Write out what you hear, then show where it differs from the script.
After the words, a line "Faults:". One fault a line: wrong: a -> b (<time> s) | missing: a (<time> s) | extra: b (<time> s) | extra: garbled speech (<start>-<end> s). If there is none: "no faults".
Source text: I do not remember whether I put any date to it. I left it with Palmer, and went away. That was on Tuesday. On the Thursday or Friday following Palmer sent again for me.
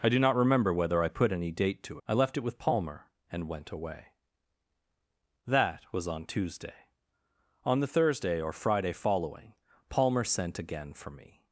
I do not remember whether I put any date to. I left it with Palmer, and went away. That was on Tuesday. On the Thursday or Friday following Palmer sent again for me.
Faults:
missing: it (2.0 s)